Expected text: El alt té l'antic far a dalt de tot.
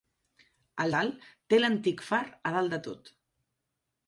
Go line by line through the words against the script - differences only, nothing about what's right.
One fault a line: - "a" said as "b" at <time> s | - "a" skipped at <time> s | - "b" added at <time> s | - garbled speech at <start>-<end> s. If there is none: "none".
none